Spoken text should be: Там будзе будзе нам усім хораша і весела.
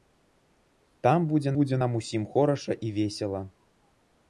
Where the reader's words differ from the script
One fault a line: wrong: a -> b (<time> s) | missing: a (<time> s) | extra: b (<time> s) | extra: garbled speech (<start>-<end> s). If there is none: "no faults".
no faults